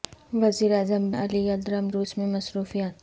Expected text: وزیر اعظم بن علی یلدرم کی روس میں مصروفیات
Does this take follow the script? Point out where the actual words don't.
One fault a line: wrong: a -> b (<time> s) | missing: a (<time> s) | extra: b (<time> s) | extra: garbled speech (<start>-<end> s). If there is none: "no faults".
missing: بن (1.1 s)
missing: کی (1.9 s)